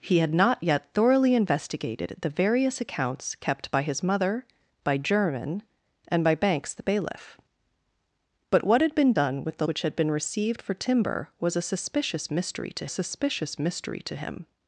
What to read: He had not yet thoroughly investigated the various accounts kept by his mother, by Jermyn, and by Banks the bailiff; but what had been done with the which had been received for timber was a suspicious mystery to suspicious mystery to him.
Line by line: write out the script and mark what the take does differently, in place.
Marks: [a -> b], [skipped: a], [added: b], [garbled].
He had not yet thoroughly investigated the various accounts kept by his mother, by Jermyn, and by Banks the bailiff; but what had been done with the which had been received for timber was a suspicious mystery to suspicious mystery to him.